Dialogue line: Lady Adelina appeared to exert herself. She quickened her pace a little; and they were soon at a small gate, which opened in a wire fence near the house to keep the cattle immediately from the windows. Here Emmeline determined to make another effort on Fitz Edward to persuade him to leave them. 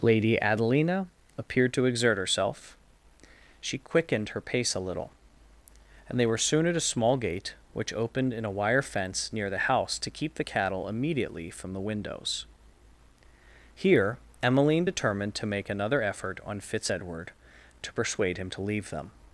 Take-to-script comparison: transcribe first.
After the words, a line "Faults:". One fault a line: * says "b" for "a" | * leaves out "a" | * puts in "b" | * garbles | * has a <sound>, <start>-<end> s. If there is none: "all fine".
Lady Adelina appeared to exert herself. She quickened her pace a little; and they were soon at a small gate, which opened in a wire fence near the house to keep the cattle immediately from the windows. Here Emmeline determined to make another effort on Fitz Edward to persuade him to leave them.
Faults:
all fine